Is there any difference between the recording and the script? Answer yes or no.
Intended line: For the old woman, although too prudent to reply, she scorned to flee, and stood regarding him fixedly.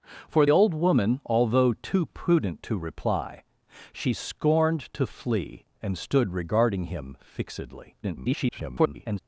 yes